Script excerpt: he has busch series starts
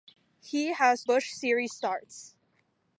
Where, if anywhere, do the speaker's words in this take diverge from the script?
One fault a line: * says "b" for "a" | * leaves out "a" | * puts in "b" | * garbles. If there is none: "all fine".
all fine